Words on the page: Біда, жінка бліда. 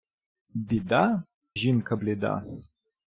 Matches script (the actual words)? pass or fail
pass